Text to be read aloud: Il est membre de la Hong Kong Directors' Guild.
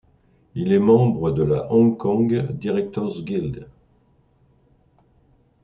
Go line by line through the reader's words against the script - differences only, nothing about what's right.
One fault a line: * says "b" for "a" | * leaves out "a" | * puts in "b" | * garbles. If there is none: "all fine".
all fine